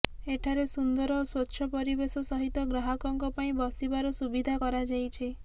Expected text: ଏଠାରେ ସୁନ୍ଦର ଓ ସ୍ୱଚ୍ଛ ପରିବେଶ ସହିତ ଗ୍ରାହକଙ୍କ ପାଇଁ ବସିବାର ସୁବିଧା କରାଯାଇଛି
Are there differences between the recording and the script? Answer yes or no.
no